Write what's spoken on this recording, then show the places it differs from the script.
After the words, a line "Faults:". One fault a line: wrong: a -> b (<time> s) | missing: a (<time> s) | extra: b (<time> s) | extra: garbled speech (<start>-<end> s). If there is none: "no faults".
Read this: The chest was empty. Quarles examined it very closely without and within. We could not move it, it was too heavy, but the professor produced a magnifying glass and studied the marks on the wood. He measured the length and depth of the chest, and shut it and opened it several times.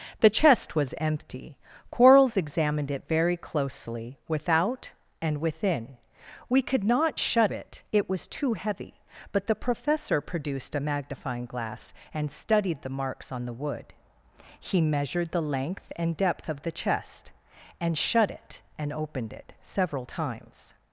The chest was empty. Quarles examined it very closely without and within. We could not shut it, it was too heavy, but the professor produced a magnifying glass and studied the marks on the wood. He measured the length and depth of the chest, and shut it and opened it several times.
Faults:
wrong: move -> shut (7.2 s)